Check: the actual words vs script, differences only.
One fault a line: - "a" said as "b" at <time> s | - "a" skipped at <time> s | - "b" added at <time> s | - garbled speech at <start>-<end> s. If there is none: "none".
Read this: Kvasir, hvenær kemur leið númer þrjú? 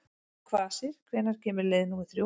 none